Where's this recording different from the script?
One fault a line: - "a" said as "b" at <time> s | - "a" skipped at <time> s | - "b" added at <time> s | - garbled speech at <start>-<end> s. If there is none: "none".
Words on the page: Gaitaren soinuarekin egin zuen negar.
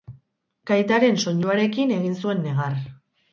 none